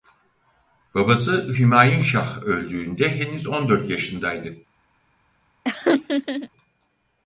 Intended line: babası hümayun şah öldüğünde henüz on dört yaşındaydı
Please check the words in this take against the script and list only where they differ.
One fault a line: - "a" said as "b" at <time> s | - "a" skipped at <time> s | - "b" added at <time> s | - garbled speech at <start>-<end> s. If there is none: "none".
none